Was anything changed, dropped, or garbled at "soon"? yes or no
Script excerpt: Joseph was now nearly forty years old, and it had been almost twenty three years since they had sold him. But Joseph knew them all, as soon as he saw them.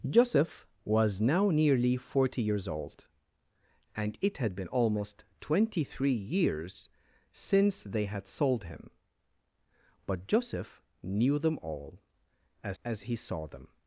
yes